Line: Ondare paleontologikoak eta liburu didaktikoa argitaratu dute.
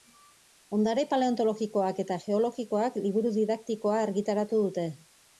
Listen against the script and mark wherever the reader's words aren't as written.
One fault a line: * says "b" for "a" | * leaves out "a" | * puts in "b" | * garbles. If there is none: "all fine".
* puts in "geologikoak"